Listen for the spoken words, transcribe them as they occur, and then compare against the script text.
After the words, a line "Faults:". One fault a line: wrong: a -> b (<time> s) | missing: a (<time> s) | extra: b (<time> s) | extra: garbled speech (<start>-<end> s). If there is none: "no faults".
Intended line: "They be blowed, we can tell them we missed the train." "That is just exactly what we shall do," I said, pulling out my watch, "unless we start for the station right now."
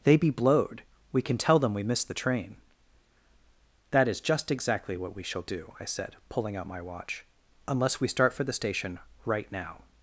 "They be blowed, we can tell them we missed the train." "That is just exactly what we shall do," I said, pulling out my watch, "unless we start for the station right now."
Faults:
no faults